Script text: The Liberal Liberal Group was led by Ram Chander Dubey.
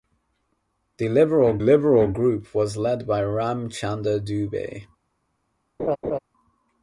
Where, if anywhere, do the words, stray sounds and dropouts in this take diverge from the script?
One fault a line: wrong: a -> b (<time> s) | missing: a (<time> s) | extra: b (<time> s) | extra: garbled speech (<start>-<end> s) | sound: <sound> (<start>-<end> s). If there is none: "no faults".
sound: laugh (5.8-6.2 s)